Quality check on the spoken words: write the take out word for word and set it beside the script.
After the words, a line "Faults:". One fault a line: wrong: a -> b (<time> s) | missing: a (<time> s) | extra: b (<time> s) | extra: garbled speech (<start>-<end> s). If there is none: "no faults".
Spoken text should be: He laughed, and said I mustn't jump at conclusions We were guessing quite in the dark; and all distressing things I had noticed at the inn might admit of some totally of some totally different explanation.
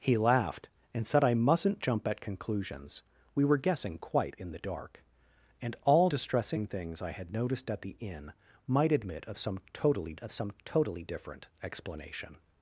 He laughed, and said I mustn't jump at conclusions We were guessing quite in the dark; and all distressing things I had noticed at the inn might admit of some totally of some totally different explanation.
Faults:
no faults